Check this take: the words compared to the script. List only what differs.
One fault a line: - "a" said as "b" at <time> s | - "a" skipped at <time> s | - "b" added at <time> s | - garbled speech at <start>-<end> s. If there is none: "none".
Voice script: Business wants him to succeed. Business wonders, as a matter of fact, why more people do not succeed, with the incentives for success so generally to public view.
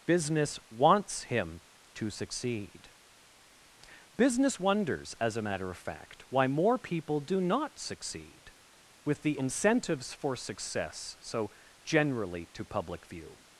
none